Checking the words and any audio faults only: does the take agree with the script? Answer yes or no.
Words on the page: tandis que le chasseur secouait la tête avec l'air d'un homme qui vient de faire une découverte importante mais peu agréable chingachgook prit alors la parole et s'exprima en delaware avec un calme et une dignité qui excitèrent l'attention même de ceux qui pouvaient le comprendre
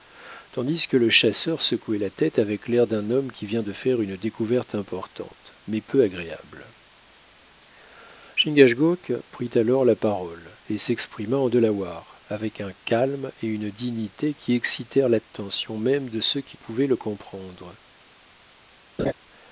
no